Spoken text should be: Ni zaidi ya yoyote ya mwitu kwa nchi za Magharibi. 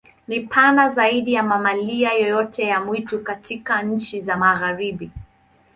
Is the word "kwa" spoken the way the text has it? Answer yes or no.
no